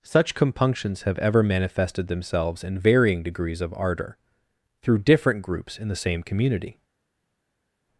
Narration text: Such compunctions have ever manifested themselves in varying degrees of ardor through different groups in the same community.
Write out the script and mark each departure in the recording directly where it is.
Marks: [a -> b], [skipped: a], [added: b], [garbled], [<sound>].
Such compunctions have ever manifested themselves in varying degrees of ardor through different groups in the same community.